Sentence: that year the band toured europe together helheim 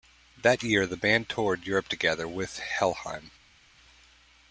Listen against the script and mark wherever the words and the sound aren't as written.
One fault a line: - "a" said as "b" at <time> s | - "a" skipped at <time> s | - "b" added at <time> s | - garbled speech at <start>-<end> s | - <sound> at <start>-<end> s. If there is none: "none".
- "with" added at 2.3 s